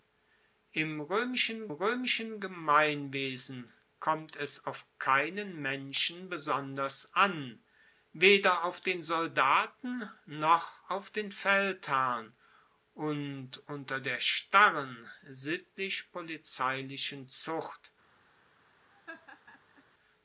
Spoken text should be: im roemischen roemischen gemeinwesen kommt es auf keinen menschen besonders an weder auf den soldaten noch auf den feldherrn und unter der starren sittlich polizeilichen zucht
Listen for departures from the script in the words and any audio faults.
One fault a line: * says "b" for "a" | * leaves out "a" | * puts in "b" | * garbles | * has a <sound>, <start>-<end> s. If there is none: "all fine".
* has a laugh, 18.9-19.8 s